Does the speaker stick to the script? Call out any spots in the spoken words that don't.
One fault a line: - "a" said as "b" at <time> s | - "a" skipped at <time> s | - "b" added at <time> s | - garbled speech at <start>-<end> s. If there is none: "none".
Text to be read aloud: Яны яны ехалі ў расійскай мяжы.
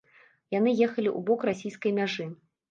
- "яны" skipped at 0.7 s
- "бок" added at 1.3 s